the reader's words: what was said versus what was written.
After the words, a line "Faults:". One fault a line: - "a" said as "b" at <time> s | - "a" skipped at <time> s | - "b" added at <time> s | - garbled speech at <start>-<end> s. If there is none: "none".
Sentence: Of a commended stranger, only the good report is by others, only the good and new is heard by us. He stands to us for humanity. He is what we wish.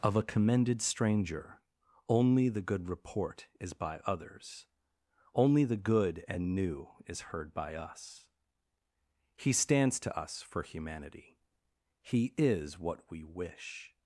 Of a commended stranger, only the good report is by others, only the good and new is heard by us. He stands to us for humanity. He is what we wish.
Faults:
none